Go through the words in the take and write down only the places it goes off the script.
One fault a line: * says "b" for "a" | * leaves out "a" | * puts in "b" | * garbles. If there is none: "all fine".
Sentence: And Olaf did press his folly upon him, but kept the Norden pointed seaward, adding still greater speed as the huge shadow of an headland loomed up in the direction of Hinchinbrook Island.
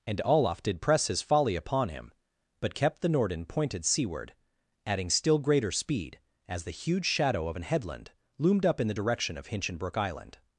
all fine